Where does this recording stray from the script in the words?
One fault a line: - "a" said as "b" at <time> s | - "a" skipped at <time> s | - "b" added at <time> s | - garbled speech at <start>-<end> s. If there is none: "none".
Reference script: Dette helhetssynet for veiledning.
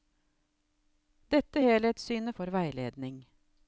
none